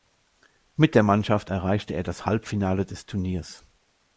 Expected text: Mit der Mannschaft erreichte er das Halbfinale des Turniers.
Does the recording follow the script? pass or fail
pass